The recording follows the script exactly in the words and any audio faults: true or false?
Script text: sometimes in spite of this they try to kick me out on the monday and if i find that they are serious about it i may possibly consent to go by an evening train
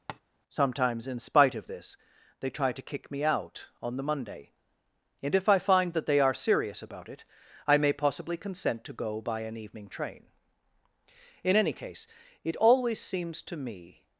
false